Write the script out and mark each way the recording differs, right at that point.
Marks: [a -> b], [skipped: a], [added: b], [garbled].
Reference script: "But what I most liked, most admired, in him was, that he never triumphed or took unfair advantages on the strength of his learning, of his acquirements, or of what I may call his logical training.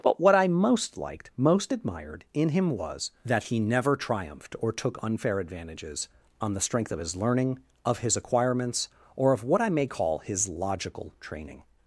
"But what I most liked, most admired, in him was, that he never triumphed or took unfair advantages on the strength of his learning, of his acquirements, or of what I may call his logical training.